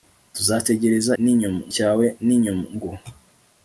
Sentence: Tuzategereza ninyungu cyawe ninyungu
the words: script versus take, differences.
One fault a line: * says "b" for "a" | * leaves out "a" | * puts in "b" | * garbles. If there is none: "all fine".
all fine